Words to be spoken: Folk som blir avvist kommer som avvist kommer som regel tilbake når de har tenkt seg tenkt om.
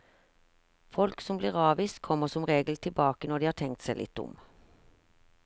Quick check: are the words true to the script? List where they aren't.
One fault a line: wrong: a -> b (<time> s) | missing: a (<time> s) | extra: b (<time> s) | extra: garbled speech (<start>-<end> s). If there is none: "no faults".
missing: avvist kommer som (2.5 s)
wrong: tenkt -> litt (4.0 s)